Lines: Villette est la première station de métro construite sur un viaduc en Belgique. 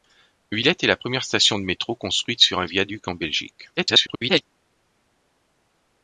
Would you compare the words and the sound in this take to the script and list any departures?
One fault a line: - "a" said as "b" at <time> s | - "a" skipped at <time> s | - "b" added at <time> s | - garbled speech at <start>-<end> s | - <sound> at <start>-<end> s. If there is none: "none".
- garbled speech at 3.8-4.4 s